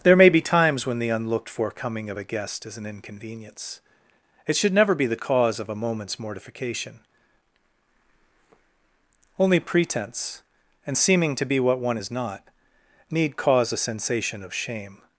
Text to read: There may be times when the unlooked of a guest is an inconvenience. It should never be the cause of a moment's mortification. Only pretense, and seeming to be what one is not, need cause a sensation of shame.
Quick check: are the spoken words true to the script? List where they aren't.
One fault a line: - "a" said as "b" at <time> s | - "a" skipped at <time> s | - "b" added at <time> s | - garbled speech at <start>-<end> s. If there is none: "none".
- "for coming" added at 1.5 s